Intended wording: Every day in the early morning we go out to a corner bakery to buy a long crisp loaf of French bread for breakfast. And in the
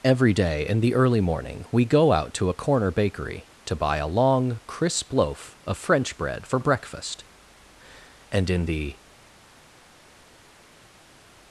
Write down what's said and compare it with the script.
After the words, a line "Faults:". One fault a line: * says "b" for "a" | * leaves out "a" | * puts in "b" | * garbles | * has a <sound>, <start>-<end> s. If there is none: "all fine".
Every day in the early morning we go out to a corner bakery to buy a long crisp loaf of French bread for breakfast. And in the
Faults:
all fine